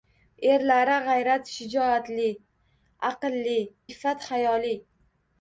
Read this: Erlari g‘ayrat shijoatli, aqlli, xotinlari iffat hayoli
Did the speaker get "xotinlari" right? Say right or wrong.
wrong